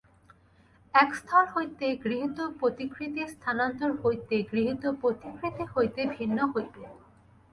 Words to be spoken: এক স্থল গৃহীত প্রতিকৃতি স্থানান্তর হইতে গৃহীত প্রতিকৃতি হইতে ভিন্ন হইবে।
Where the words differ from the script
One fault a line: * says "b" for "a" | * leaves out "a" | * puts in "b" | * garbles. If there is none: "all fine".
* puts in "হইতে"